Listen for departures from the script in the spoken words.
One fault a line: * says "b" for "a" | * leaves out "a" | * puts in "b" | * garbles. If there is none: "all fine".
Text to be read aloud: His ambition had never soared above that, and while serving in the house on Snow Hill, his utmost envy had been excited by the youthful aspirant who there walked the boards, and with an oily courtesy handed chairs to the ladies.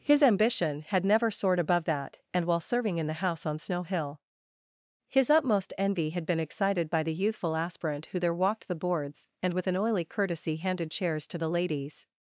all fine